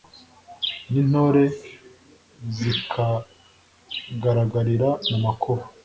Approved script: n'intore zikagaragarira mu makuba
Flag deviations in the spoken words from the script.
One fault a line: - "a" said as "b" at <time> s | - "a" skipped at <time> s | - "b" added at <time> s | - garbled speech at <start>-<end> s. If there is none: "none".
none